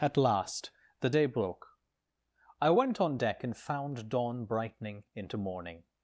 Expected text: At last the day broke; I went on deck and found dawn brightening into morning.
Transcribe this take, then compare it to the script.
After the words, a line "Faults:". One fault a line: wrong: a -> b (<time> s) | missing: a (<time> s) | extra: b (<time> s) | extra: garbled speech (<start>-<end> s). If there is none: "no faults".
At last the day broke; I went on deck and found dawn brightening into morning.
Faults:
no faults